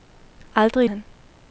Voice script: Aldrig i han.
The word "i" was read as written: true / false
true